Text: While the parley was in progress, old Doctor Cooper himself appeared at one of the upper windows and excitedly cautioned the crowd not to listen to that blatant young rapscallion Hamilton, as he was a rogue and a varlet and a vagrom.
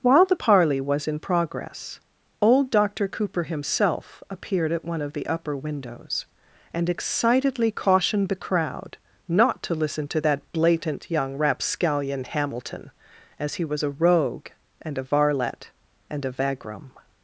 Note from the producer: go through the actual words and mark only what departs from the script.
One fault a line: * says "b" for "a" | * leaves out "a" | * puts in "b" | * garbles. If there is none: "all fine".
all fine